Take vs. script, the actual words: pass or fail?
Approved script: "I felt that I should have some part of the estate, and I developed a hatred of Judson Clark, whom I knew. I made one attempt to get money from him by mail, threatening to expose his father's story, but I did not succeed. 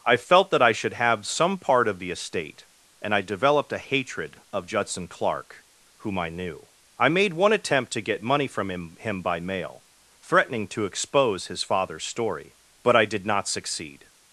fail